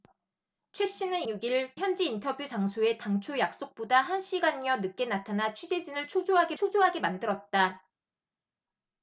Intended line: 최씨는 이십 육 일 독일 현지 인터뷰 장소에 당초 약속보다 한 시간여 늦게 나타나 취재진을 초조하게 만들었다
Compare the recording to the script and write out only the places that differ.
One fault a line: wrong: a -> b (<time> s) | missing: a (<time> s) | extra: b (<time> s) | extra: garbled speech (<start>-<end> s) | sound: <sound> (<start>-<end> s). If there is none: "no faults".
missing: 이십 (1.2 s)
missing: 독일 (1.7 s)
extra: 초조하게 (6.6 s)